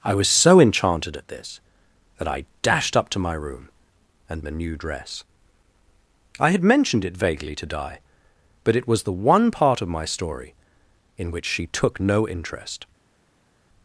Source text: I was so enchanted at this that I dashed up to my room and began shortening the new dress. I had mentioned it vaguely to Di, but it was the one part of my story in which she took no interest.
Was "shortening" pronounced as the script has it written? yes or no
no